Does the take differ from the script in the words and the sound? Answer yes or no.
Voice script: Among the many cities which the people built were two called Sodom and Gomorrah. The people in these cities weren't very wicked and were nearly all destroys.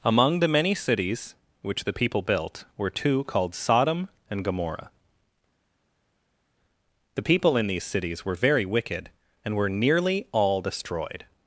yes